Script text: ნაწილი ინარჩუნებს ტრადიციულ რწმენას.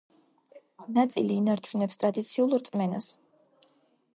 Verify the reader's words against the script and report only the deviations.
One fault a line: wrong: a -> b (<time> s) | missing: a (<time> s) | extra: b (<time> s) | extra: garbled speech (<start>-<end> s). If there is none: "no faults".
no faults